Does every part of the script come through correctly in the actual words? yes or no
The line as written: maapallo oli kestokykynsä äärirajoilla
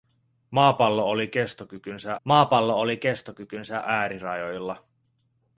no